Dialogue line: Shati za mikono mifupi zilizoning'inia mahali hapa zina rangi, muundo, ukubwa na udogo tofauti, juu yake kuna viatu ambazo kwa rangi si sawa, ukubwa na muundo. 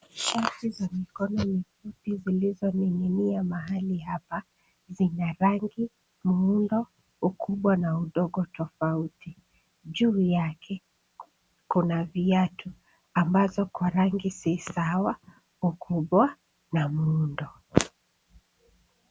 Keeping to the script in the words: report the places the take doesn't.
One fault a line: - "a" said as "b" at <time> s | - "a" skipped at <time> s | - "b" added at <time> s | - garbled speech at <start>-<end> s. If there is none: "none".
none